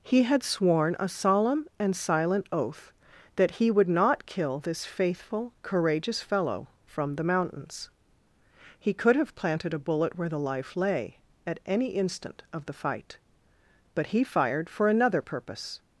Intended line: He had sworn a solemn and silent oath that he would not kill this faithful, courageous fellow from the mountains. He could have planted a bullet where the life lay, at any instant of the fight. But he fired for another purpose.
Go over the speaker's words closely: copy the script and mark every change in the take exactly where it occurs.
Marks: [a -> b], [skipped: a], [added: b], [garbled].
He had sworn a solemn and silent oath that he would not kill this faithful, courageous fellow from the mountains. He could have planted a bullet where the life lay, at any instant of the fight. But he fired for another purpose.